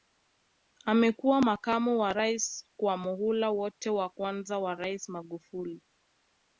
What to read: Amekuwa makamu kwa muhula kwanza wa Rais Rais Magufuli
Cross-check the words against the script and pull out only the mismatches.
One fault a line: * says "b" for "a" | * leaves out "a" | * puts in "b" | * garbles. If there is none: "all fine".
* puts in "wa Rais"
* puts in "wote wa"
* leaves out "Rais"